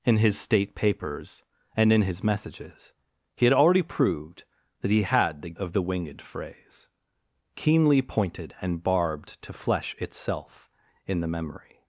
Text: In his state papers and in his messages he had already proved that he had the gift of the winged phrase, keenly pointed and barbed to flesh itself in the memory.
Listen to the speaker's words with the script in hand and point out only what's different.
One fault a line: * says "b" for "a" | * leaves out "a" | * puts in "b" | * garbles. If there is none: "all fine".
* leaves out "gift"